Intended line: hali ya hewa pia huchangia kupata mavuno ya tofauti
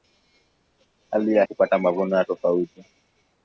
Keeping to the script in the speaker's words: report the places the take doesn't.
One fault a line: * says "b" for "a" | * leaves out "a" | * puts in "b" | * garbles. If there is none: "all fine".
* leaves out "hewa pia huchangia"